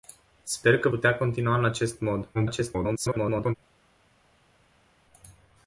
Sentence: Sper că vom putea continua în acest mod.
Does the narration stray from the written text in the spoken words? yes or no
yes